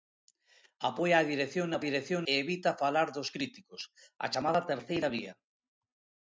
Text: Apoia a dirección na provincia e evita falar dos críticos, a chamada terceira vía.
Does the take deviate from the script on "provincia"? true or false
true